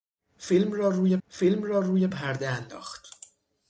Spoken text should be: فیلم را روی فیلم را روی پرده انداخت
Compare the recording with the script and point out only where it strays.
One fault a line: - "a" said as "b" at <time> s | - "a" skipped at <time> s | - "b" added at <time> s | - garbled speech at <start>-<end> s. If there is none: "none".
none